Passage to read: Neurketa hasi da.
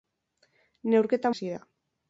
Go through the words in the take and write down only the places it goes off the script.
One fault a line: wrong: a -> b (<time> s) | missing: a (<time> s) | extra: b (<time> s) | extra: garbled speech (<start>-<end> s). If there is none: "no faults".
no faults